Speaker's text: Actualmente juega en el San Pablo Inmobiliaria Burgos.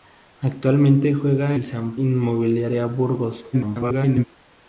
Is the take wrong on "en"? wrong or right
wrong